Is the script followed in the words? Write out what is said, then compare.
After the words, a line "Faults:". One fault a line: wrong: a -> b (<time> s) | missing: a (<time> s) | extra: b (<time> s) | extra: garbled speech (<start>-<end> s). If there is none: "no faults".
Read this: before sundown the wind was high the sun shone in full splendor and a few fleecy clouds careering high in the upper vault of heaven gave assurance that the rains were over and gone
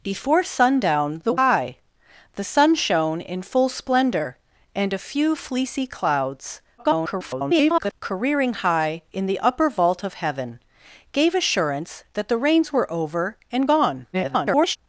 before sundown the high the sun shone in full splendor and a few fleecy clouds [garbled] careering high in the upper vault of heaven gave assurance that the rains were over and gone [garbled]
Faults:
missing: wind was (1.4 s)
extra: garbled speech (6.8-7.9 s)
extra: garbled speech (14.1-14.8 s)